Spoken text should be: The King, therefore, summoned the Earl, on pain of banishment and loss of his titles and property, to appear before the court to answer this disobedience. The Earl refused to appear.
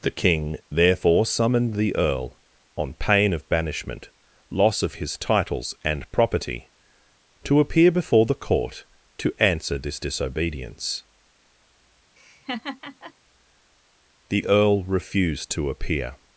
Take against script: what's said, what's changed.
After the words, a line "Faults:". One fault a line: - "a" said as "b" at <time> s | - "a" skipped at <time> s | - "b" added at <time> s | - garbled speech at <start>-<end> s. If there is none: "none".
The King, therefore, summoned the Earl, on pain of banishment loss of his titles and property, to appear before the court to answer this disobedience. The Earl refused to appear.
Faults:
- "and" skipped at 4.1 s